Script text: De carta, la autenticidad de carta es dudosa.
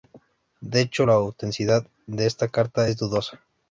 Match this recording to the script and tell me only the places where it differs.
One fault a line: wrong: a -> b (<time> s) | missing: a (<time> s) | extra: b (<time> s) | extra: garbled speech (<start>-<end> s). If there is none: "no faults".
wrong: carta -> hecho (0.8 s)
extra: esta (2.3 s)